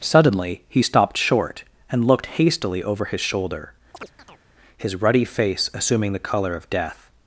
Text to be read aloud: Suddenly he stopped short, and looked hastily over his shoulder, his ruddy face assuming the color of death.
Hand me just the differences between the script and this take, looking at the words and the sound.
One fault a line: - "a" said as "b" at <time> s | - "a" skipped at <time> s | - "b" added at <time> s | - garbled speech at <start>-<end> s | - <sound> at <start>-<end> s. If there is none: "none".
- chirp at 3.9-4.4 s